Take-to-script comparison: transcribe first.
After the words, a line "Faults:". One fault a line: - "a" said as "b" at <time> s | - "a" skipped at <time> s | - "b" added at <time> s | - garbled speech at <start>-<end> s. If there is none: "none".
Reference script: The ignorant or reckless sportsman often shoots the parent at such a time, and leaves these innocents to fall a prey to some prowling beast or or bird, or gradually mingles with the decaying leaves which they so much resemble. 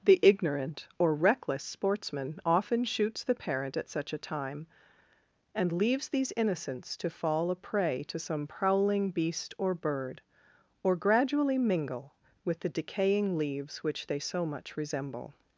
The ignorant or reckless sportsman often shoots the parent at such a time, and leaves these innocents to fall a prey to some prowling beast or bird, or gradually mingle with the decaying leaves which they so much resemble.
Faults:
- "or" skipped at 9.7 s
- "mingles" said as "mingle" at 11.6 s